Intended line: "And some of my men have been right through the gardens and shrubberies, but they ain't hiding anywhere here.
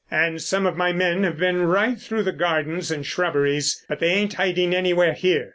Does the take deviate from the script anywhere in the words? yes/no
no